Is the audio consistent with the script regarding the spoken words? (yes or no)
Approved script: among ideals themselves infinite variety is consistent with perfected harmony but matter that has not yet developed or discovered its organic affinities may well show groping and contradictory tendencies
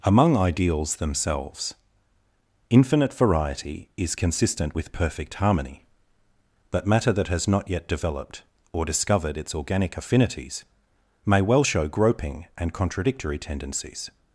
no